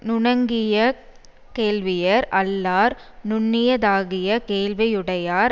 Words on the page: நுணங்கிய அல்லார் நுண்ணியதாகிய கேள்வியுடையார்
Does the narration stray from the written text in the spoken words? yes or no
yes